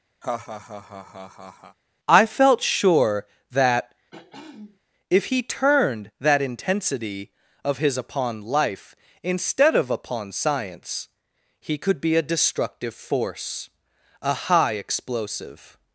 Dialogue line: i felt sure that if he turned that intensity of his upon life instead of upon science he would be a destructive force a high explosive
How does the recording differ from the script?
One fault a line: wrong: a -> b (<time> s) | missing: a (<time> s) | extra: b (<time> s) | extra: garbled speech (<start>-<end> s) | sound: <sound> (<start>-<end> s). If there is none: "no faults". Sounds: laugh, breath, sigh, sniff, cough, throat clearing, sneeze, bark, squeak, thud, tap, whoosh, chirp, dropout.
sound: laugh (0.2-1.8 s)
sound: throat clearing (4.1-4.8 s)
wrong: would -> could (11.8 s)